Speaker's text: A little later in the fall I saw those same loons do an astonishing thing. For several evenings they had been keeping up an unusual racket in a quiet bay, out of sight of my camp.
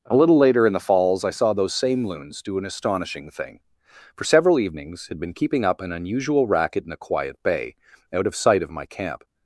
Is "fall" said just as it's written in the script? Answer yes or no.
no